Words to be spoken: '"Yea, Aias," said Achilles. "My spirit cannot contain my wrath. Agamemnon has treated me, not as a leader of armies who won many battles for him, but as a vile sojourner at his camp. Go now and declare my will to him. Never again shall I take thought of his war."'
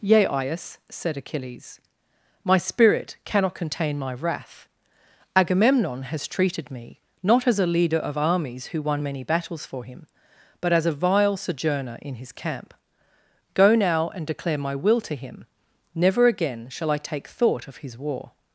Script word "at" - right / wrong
wrong